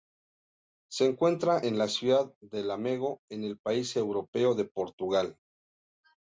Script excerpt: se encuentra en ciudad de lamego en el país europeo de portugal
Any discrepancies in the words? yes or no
yes